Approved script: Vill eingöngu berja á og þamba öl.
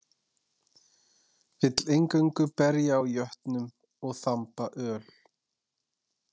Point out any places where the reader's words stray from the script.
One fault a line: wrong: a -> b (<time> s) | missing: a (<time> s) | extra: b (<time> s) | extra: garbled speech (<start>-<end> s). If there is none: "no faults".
extra: jötnum (3.1 s)